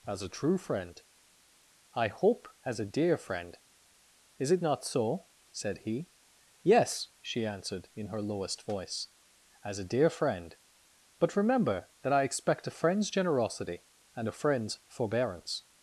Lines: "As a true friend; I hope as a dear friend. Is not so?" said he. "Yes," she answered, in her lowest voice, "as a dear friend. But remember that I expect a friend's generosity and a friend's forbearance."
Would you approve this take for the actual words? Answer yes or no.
no